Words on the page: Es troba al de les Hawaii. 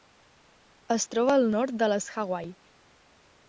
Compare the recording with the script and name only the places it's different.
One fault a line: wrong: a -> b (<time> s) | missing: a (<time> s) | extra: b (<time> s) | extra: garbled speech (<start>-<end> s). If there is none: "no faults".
extra: nord (1.6 s)